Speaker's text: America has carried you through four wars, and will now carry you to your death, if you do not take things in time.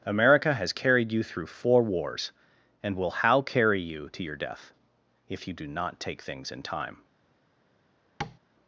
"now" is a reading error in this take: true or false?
true